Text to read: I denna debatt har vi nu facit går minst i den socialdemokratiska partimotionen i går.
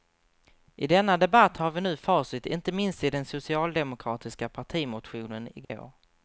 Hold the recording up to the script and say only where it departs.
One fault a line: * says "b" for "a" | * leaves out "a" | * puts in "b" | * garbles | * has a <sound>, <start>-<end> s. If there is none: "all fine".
* says "inte" for "går"
* has a dropout, 5.6-5.7 s